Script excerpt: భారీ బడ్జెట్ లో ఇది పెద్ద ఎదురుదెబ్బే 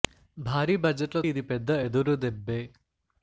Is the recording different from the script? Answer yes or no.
no